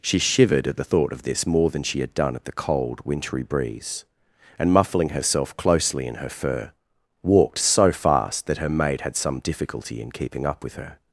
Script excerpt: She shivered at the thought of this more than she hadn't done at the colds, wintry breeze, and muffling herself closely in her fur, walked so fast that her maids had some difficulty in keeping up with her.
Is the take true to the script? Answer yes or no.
no